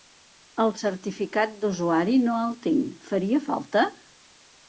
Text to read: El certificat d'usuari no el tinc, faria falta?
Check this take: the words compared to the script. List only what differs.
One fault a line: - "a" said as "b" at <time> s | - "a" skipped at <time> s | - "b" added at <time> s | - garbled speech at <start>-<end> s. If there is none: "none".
none